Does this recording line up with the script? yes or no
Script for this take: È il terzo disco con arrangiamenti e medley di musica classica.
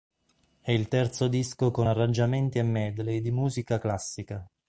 yes